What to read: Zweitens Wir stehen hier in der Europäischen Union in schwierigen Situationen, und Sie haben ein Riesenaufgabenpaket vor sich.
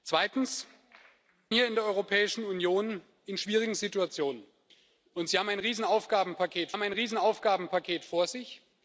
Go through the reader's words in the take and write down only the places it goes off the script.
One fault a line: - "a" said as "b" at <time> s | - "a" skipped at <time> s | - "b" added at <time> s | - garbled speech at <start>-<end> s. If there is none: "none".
- "Wir stehen" skipped at 0.7 s
- "haben ein Riesenaufgabenpaket" added at 6.7 s